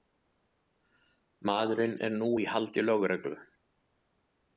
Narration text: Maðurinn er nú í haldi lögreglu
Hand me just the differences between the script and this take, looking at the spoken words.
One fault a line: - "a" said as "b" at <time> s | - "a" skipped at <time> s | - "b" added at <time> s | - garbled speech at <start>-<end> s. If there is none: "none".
none